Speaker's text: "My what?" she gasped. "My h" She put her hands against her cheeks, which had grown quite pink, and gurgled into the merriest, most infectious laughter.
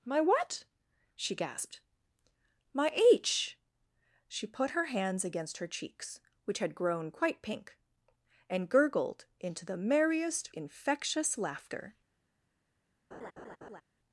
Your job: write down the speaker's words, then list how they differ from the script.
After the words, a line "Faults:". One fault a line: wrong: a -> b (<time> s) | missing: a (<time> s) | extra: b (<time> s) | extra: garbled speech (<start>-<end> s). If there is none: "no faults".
"My what?" she gasped. "My h" She put her hands against her cheeks, which had grown quite pink, and gurgled into the merriest, infectious laughter.
Faults:
missing: most (10.5 s)